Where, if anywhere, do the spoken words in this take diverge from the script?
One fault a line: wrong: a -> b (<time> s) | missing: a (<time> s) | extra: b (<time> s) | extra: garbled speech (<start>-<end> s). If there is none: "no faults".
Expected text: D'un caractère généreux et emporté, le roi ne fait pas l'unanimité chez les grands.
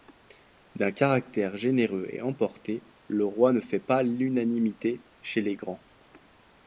no faults